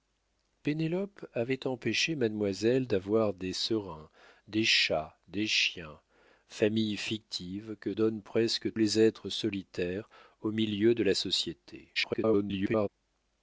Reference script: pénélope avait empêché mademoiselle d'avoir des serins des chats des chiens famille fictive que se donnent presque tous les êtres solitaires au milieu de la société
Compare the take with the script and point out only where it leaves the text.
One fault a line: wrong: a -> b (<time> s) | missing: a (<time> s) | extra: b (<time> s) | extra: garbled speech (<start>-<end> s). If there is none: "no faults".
missing: se (7.9 s)
missing: tous (8.7 s)
extra: garbled speech (12.0-12.9 s)